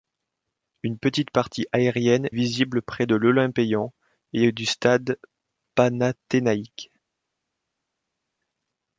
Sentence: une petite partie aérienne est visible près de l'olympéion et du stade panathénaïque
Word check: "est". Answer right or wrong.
wrong